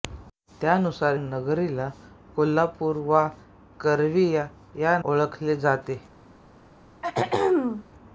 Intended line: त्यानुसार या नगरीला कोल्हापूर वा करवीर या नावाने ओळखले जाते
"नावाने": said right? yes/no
no